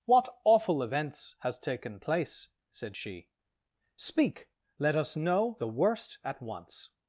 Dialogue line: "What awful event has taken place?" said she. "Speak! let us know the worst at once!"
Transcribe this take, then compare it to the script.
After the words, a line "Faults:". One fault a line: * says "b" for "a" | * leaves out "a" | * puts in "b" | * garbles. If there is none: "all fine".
"What awful events has taken place?" said she. "Speak! let us know the worst at once!"
Faults:
* says "events" for "event"